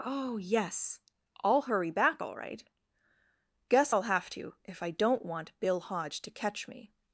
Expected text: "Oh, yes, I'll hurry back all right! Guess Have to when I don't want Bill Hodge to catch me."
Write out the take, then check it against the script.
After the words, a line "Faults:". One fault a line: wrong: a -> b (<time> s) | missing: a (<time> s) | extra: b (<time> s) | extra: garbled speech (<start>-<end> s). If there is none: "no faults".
"Oh, yes, I'll hurry back all right! Guess I'll have to if I don't want Bill Hodge to catch me."
Faults:
extra: I'll (3.9 s)
wrong: when -> if (4.6 s)